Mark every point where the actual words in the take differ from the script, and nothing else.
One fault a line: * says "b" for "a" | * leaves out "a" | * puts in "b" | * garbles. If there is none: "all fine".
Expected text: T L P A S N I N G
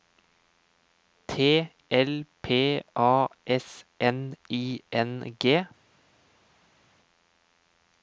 all fine